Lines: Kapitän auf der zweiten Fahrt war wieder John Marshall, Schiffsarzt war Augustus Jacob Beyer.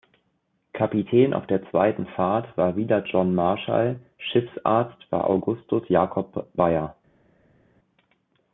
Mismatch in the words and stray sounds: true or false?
false